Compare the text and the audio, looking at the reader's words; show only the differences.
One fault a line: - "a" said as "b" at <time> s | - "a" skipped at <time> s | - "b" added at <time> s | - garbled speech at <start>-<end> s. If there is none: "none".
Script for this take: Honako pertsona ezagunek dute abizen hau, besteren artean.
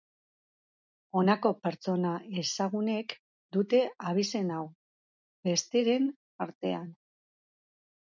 none